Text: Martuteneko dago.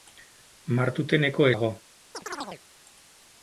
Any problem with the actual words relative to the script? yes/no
no